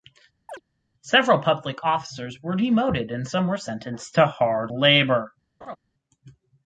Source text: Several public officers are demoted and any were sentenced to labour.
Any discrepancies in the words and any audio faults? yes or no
yes